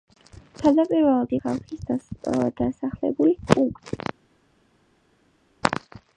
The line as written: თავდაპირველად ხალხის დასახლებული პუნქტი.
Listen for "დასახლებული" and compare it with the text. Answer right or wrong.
right